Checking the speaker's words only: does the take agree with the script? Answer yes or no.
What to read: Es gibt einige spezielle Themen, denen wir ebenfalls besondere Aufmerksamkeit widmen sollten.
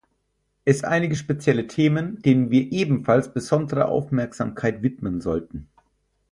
no